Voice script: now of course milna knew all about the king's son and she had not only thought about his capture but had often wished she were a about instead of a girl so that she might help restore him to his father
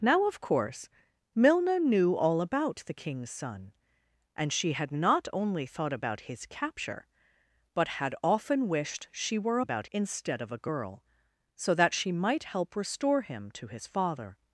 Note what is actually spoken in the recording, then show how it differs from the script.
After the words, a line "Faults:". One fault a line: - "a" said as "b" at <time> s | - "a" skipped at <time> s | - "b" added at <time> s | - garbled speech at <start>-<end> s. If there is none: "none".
now of course milna knew all about the king's son and she had not only thought about his capture but had often wished she were a about instead of a girl so that she might help restore him to his father
Faults:
none